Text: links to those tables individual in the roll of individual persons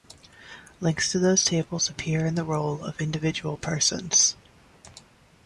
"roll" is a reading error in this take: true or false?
false